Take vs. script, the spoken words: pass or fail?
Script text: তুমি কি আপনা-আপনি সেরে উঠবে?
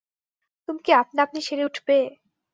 pass